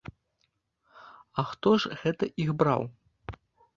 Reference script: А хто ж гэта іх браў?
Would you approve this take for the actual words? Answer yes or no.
yes